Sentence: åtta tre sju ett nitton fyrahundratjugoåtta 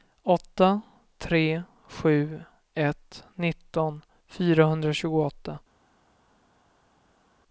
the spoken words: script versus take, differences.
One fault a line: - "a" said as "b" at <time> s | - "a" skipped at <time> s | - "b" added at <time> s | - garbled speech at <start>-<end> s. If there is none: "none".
none